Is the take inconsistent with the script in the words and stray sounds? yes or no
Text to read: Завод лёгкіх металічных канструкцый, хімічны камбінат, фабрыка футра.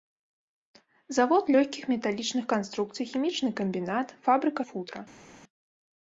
no